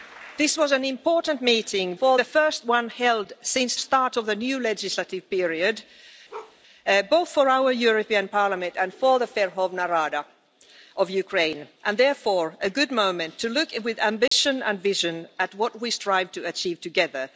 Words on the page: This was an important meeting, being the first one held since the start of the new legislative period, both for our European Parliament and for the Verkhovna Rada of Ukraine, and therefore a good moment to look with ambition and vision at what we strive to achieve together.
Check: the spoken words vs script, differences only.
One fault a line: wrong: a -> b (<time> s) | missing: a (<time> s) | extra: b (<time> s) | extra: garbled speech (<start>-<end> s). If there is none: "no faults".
wrong: being -> for (1.9 s)
missing: the (3.8 s)